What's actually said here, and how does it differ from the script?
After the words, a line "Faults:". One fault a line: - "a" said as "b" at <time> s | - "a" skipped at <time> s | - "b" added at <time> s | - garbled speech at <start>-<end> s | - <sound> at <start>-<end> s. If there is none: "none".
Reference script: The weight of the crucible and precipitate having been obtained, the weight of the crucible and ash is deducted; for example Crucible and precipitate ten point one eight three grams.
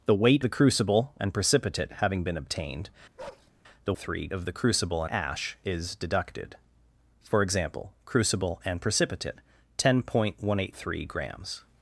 The weight the crucible and precipitate having been obtained, the three of the crucible ash is deducted; for example Crucible and precipitate ten point one eight three grams.
Faults:
- "of" skipped at 0.4 s
- bark at 3.2-3.5 s
- "weight" said as "three" at 4.0 s
- "and" skipped at 5.0 s